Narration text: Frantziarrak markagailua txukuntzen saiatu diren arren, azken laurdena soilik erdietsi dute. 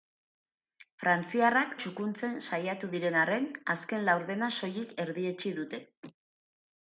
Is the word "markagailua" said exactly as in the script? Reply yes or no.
no